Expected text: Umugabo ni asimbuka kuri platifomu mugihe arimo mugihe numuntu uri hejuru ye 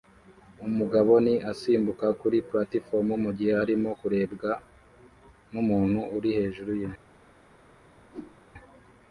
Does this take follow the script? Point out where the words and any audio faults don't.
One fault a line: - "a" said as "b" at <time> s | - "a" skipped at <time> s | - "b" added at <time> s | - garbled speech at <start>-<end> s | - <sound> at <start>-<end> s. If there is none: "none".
- "mugihe" said as "kurebwa" at 4.0 s
- whoosh at 8.1-8.4 s